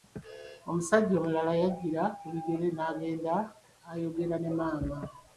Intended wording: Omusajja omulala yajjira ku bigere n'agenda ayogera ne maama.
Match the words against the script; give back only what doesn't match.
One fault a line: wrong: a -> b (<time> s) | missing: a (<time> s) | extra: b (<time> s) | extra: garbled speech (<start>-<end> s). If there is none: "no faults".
no faults